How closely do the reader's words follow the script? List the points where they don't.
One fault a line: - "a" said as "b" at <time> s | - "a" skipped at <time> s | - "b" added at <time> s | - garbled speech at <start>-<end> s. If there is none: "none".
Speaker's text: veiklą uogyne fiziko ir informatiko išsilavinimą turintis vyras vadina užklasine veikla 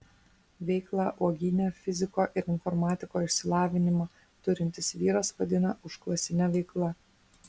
none